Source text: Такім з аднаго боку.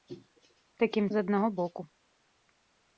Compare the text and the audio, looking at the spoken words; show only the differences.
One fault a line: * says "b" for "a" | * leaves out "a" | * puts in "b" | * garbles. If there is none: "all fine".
all fine